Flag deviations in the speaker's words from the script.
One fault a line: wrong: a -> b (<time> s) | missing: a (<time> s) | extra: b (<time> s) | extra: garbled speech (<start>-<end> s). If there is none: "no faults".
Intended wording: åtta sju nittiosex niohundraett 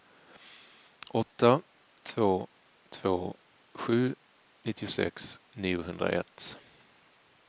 extra: två två (2.0 s)